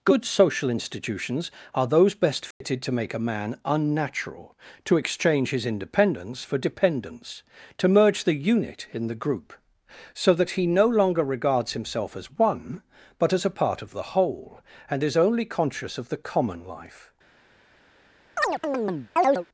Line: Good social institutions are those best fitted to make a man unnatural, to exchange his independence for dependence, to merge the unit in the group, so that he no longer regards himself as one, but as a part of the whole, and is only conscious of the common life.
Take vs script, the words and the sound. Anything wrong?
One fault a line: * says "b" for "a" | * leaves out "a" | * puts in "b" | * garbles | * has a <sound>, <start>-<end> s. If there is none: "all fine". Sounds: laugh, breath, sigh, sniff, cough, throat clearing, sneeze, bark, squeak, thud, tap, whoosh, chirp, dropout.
* has a dropout, 2.5-2.6 s
* has a chirp, 18.4-19.5 s